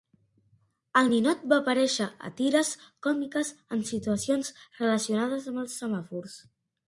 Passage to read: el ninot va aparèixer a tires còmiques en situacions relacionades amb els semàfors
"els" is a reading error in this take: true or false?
false